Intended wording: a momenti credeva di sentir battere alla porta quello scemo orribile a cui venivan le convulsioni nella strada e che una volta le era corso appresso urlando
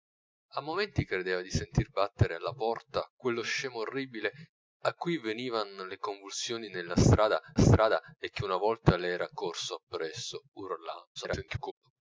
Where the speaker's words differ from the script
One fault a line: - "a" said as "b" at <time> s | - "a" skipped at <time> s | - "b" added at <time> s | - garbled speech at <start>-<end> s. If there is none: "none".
- "strada" added at 7.6 s
- garbled speech at 11.2-11.7 s